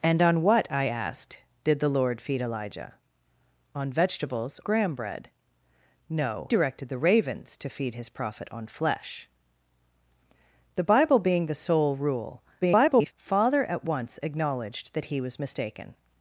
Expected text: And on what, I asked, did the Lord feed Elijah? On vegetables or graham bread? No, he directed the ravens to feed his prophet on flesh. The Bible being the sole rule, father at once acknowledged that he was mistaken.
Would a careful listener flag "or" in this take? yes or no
yes